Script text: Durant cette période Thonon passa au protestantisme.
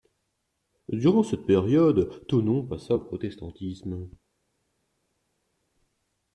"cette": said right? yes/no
yes